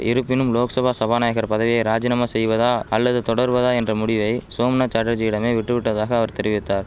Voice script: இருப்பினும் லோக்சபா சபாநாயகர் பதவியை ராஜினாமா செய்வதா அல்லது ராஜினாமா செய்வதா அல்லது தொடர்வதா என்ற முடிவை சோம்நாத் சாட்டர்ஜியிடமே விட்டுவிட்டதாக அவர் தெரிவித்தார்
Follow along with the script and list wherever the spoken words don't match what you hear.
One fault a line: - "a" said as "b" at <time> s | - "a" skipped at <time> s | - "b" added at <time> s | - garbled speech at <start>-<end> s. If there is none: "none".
- "ராஜினாமா செய்வதா அல்லது" skipped at 3.2 s